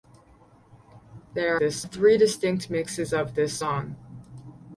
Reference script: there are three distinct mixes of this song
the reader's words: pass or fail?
fail